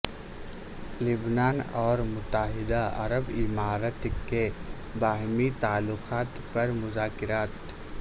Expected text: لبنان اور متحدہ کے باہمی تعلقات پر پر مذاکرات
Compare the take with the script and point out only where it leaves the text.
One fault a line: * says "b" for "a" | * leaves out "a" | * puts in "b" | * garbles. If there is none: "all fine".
* puts in "عرب امارات"
* leaves out "پر"